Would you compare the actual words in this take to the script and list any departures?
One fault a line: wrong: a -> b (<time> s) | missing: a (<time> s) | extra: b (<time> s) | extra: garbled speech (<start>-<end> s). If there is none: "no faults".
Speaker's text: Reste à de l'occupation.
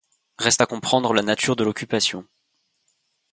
extra: comprendre la nature (0.6 s)